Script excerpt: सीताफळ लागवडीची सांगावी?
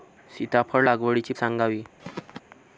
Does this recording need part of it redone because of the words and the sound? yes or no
yes